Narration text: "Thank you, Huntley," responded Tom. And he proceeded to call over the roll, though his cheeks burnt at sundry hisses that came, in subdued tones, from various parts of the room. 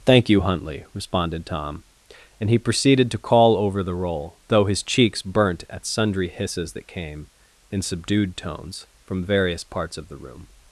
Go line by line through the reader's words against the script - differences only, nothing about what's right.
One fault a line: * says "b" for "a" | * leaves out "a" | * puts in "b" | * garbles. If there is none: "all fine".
all fine